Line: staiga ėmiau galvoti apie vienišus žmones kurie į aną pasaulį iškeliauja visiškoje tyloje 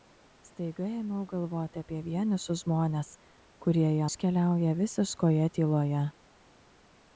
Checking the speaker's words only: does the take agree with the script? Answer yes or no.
no